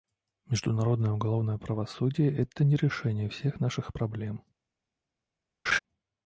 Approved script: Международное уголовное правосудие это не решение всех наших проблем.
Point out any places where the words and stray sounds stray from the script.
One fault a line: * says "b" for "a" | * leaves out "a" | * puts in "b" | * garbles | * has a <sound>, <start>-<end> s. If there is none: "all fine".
* has a laugh, 5.7-5.8 s